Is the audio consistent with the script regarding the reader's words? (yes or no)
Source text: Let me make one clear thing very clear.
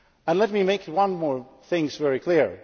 no